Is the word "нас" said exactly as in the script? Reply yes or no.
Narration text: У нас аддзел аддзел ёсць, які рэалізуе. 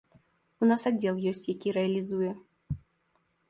yes